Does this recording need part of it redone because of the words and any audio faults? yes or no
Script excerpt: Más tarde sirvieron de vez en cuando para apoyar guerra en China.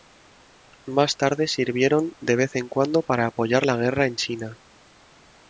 yes